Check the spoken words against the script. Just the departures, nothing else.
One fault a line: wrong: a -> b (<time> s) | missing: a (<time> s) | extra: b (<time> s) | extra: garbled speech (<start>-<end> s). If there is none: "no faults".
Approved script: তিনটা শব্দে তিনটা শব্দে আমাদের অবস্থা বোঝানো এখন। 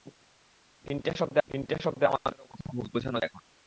no faults